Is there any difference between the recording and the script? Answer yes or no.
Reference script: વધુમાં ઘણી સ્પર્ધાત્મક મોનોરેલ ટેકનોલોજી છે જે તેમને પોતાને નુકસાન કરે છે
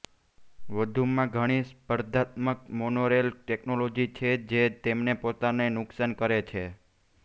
no